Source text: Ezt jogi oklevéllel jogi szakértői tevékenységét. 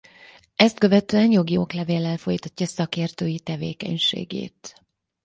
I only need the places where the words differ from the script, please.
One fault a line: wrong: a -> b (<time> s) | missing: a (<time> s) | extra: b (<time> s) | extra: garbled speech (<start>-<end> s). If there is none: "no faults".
extra: követően (0.8 s)
wrong: jogi -> folytatja (2.1 s)